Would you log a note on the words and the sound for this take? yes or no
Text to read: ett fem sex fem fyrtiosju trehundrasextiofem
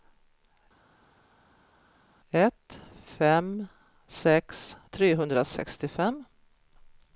yes